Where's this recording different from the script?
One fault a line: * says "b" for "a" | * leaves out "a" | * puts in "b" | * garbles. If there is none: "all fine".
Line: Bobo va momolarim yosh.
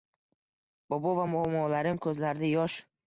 * puts in "ko'zlarida"